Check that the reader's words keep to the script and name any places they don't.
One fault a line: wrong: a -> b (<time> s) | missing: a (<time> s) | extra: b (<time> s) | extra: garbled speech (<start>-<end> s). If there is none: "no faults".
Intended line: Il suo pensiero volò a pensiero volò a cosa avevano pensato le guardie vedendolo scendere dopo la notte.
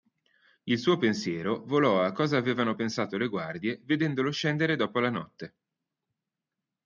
missing: pensiero volò a (2.1 s)